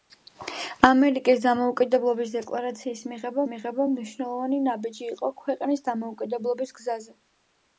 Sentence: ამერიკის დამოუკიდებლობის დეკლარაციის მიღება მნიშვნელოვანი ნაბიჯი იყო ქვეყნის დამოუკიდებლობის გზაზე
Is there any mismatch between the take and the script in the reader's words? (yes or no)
yes